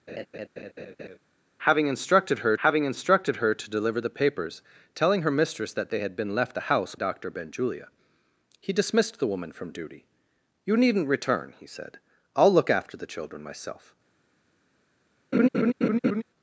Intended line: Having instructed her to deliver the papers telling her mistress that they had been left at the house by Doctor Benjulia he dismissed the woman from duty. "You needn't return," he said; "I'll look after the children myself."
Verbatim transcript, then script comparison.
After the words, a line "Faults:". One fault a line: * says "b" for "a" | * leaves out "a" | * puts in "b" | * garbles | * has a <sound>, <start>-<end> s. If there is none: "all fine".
Having instructed her having instructed her to deliver the papers telling her mistress that they had been left the house Doctor Benjulia he dismissed the woman from duty. "You needn't return," he said; "I'll look after the children myself."
Faults:
* has a laugh, 0.1-1.2 s
* puts in "having instructed her"
* leaves out "at"
* leaves out "by"
* has a laugh, 15.3-16.2 s